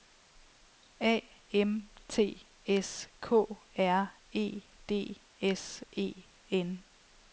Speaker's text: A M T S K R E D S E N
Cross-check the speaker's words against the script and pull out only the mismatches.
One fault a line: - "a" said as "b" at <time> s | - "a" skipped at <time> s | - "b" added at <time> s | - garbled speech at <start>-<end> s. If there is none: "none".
none